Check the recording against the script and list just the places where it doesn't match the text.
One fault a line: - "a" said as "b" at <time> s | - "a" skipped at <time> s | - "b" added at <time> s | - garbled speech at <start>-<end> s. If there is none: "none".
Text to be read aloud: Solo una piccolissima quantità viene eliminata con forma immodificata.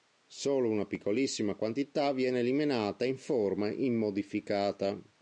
- "con" said as "in" at 3.0 s